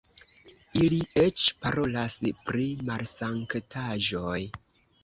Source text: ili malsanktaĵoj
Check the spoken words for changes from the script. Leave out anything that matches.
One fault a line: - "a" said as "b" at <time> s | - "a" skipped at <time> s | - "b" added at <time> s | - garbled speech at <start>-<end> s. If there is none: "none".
- "eĉ parolas pri" added at 1.2 s